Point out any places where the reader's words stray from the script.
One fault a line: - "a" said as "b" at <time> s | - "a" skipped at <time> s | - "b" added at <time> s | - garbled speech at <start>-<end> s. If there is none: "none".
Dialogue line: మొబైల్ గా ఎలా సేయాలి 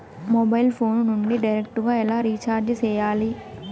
- "ఫోను నుండి డైరెక్టు" added at 0.8 s
- "రీచార్జి" added at 2.3 s